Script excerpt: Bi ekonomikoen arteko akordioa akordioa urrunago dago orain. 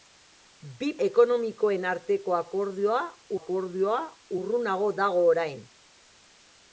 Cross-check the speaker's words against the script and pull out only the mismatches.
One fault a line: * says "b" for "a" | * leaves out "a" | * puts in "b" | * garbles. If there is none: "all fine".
all fine